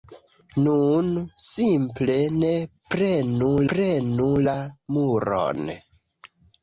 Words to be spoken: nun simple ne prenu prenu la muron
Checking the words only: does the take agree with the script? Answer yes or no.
yes